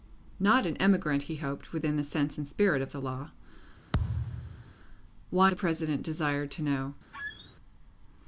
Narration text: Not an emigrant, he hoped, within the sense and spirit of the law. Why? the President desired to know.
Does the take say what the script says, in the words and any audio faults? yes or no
no